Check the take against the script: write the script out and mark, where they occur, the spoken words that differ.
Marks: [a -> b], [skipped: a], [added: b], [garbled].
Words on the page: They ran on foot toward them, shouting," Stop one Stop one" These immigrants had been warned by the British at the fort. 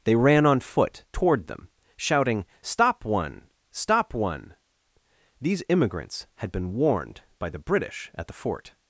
They ran on foot toward them, shouting," Stop one Stop one" These immigrants had been warned by the British at the fort.